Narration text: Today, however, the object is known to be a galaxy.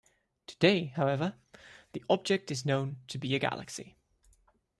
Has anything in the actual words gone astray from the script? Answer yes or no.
no